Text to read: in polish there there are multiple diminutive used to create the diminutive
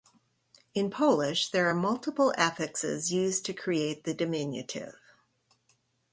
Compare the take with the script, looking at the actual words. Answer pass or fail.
fail